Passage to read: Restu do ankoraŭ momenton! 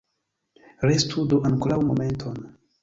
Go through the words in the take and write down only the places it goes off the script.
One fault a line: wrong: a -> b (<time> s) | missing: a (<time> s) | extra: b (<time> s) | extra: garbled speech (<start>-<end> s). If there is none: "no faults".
no faults